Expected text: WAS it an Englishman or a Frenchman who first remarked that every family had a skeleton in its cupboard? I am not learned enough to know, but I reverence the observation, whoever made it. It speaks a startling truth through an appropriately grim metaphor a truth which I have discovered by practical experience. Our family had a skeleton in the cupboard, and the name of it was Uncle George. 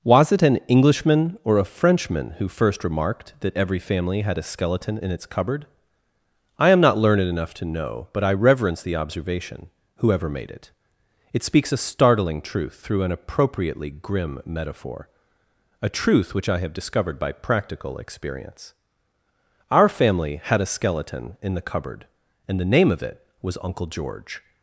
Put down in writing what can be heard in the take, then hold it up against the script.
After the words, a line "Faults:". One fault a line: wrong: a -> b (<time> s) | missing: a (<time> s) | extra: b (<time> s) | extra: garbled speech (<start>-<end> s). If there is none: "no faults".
WAS it an Englishman or a Frenchman who first remarked that every family had a skeleton in its cupboard? I am not learned enough to know, but I reverence the observation, whoever made it. It speaks a startling truth through an appropriately grim metaphor a truth which I have discovered by practical experience. Our family had a skeleton in the cupboard, and the name of it was Uncle George.
Faults:
no faults